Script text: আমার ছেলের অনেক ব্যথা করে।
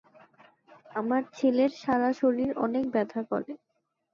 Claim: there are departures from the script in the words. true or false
true